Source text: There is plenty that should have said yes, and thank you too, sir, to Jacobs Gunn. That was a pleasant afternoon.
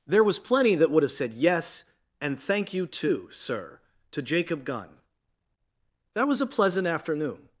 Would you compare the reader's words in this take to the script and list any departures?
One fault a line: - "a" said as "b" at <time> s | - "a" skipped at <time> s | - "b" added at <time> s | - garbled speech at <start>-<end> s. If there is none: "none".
- "is" said as "was" at 0.2 s
- "should" said as "would" at 0.9 s
- "Jacobs" said as "Jacob" at 4.2 s